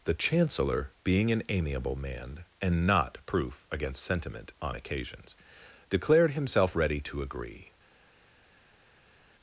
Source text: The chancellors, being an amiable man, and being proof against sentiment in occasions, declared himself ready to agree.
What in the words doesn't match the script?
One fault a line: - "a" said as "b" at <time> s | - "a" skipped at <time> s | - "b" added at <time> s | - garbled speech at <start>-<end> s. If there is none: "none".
- "chancellors" said as "chancellor" at 0.1 s
- "being" said as "not" at 2.9 s
- "in" said as "on" at 4.6 s